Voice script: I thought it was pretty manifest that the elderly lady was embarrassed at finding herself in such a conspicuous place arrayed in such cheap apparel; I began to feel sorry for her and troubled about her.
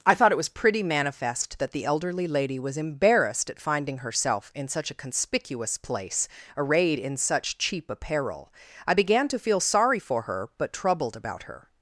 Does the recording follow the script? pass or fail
fail